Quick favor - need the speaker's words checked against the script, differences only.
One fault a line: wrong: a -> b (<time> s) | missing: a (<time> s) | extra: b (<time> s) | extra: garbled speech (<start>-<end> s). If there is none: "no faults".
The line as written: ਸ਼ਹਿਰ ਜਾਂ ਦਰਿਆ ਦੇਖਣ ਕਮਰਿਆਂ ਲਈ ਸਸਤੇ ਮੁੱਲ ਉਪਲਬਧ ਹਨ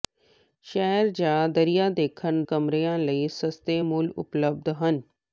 no faults